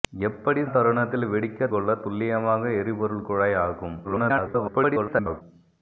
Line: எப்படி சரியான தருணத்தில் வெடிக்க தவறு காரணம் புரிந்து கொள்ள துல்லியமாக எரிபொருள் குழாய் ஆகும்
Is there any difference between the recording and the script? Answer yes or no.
yes